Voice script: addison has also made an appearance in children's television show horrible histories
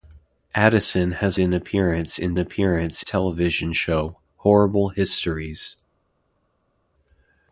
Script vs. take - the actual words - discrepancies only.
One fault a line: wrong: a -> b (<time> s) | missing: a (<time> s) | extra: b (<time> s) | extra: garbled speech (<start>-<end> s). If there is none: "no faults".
missing: also made (1.4 s)
wrong: children's -> appearance (2.4 s)